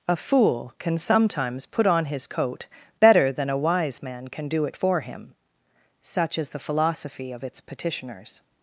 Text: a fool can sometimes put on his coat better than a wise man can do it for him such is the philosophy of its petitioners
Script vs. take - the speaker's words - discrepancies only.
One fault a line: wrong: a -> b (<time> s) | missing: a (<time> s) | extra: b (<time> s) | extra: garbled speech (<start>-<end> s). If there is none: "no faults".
no faults